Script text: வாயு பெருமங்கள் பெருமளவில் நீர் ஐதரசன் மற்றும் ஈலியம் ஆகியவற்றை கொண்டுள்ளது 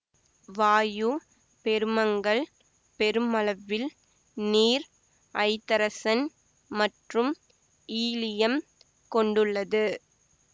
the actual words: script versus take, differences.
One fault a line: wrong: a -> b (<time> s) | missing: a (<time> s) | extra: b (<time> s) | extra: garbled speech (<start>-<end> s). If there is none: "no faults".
missing: ஆகியவற்றை (8.6 s)